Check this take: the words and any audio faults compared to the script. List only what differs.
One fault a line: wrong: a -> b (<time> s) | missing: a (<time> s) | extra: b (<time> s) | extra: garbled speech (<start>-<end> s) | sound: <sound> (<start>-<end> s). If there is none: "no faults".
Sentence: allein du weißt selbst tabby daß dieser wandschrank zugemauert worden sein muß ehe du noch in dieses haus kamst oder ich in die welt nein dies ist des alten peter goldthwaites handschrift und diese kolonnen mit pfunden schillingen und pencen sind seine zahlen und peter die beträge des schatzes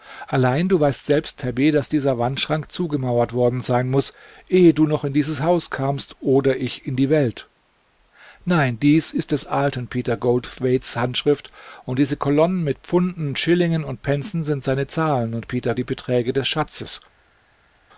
no faults